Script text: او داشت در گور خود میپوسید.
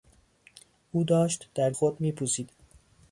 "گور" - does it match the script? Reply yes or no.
no